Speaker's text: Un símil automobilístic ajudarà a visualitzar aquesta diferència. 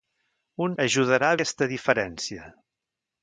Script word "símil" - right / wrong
wrong